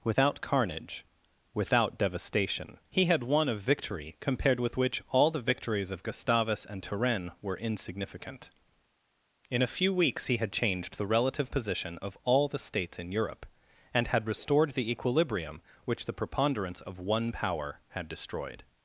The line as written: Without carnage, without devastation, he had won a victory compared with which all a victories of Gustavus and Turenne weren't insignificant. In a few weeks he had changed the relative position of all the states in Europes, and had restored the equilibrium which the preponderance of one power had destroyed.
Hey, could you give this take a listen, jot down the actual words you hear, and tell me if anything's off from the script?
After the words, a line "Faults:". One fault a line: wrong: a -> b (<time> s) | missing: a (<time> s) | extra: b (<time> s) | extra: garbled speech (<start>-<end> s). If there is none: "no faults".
Without carnage, without devastation, he had won a victory compared with which all the victories of Gustavus and Turenne were insignificant. In a few weeks he had changed the relative position of all the states in Europe, and had restored the equilibrium which the preponderance of one power had destroyed.
Faults:
wrong: a -> the (5.3 s)
wrong: weren't -> were (7.4 s)
wrong: Europes -> Europe (13.1 s)